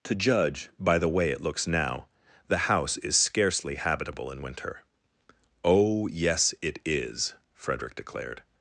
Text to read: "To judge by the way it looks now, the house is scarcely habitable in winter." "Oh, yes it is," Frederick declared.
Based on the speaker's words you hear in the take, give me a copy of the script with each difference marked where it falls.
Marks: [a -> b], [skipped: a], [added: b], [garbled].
"To judge by the way it looks now, the house is scarcely habitable in winter." "Oh, yes it is," Frederick declared.